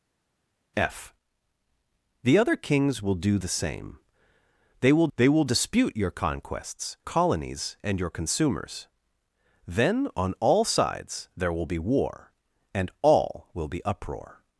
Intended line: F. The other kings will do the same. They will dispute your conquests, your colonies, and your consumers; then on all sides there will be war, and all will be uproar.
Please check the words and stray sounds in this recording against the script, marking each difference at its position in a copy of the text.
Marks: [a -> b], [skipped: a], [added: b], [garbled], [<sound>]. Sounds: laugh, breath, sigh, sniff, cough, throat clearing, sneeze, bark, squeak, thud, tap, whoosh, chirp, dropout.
F. The other kings will do the same. They will [added: they will] dispute your conquests, [skipped: your] colonies, and your consumers; then on all sides there will be war, and all will be uproar.